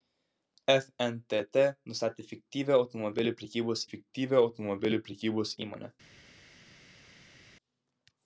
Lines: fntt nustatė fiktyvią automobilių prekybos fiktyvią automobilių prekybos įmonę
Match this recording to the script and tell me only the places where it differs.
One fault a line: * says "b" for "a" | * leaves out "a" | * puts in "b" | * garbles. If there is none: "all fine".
all fine